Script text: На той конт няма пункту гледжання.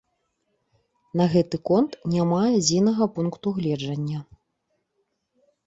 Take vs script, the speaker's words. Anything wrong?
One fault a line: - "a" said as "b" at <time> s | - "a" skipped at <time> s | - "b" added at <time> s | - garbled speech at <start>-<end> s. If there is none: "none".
- "той" said as "гэты" at 1.3 s
- "адзінага" added at 2.6 s